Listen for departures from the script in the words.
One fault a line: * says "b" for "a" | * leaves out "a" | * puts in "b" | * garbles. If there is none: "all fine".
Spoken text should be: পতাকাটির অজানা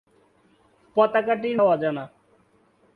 all fine